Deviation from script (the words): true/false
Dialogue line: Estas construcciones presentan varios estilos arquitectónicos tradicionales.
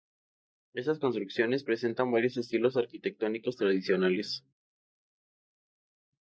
false